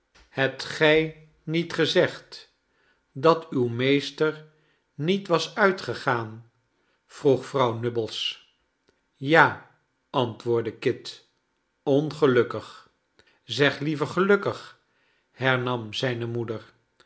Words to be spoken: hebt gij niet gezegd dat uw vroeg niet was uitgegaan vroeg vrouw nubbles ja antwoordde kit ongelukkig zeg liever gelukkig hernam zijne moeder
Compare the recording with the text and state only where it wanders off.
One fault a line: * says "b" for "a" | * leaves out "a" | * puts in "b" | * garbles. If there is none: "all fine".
* says "meester" for "vroeg"